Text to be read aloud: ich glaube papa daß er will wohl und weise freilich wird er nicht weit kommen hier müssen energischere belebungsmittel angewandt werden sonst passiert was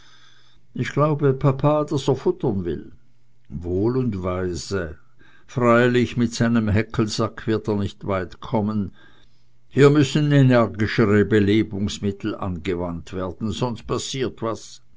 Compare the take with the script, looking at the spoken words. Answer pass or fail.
fail